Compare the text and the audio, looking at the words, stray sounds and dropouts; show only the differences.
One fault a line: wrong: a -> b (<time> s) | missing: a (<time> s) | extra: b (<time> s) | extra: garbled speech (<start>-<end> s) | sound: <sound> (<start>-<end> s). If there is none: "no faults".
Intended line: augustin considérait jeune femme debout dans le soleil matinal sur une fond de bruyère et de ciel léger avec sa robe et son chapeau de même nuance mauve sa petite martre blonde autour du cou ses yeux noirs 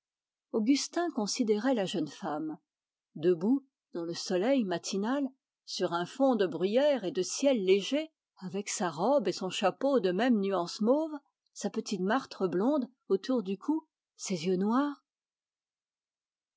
extra: la (1.8 s)
wrong: une -> un (5.9 s)